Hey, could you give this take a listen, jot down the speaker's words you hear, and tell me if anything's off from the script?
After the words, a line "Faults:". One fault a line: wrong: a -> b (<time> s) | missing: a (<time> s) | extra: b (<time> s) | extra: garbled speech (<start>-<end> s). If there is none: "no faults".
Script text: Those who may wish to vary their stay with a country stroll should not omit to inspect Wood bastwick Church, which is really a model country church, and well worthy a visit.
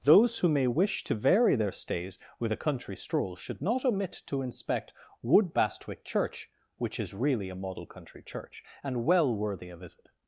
Those who may wish to vary their stays with a country stroll should not omit to inspect Wood bastwick Church, which is really a model country church, and well worthy a visit.
Faults:
wrong: stay -> stays (1.7 s)